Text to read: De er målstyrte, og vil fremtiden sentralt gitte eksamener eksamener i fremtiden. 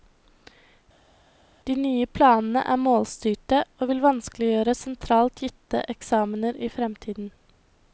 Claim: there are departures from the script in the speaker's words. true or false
true